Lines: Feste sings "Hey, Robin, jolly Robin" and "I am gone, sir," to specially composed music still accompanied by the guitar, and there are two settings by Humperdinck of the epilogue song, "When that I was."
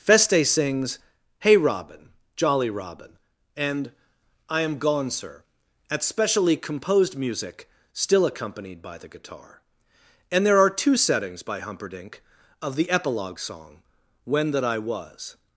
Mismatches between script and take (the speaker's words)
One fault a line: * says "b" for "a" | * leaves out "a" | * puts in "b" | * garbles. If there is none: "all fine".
* says "at" for "to"